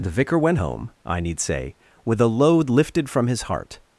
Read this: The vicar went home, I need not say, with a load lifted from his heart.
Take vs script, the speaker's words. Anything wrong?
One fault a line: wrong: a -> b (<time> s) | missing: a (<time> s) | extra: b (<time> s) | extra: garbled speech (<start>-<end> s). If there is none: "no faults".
missing: not (1.4 s)